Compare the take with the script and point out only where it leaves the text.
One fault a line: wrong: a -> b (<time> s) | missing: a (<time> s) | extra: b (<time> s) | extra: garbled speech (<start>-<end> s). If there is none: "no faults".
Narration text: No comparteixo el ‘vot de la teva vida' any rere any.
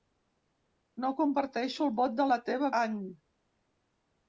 missing: vida any rere (2.7 s)